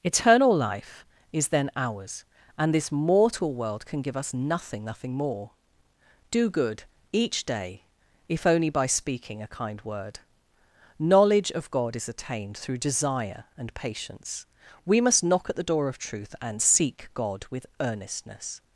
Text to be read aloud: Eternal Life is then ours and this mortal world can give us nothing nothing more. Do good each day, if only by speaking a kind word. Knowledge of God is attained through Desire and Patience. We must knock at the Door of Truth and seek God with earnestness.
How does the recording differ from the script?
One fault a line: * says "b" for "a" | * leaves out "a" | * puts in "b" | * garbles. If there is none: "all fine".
all fine